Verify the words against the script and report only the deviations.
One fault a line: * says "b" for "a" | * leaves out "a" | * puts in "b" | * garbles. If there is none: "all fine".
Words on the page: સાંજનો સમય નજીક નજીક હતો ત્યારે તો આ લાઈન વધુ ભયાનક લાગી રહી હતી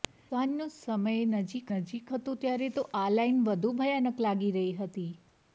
all fine